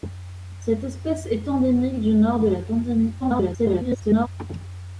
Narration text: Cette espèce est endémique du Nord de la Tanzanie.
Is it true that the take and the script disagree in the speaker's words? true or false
true